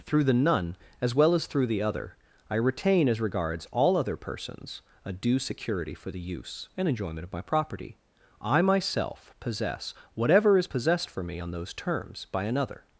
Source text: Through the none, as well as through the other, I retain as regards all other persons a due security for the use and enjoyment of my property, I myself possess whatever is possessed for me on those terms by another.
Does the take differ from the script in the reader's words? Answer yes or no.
no